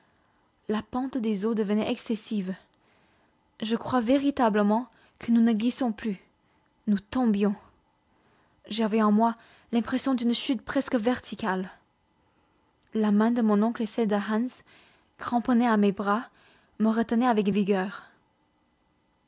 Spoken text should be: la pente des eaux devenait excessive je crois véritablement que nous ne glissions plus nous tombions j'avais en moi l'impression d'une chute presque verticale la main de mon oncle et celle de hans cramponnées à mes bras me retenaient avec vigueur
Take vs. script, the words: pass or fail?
pass